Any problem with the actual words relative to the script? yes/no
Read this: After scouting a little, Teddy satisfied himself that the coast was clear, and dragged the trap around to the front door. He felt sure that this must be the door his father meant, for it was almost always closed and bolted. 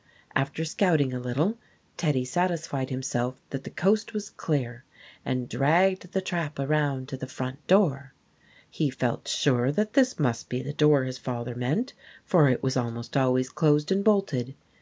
no